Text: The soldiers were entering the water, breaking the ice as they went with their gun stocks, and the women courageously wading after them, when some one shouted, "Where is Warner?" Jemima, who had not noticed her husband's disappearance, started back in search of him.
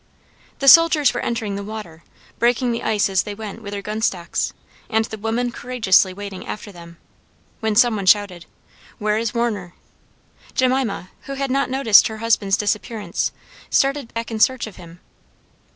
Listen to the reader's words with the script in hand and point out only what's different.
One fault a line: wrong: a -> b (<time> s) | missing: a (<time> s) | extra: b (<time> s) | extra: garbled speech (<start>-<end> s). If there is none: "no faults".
no faults